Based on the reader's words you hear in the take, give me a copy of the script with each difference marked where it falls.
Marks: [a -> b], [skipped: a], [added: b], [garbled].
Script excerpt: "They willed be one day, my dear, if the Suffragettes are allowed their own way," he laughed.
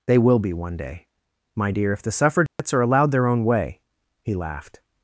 "They [willed -> will] be one day, my dear, if the Suffragettes are allowed their own way," he laughed.